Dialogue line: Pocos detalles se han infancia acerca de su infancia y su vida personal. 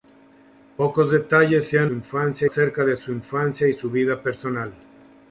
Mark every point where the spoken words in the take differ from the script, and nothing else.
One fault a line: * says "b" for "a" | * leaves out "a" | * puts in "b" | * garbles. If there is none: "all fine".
all fine